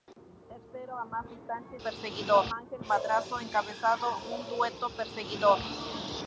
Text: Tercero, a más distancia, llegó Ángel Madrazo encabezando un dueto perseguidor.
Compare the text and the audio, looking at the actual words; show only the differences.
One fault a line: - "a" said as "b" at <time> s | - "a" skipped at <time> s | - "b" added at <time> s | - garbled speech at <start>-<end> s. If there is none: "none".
- "llegó" said as "perseguidor" at 1.8 s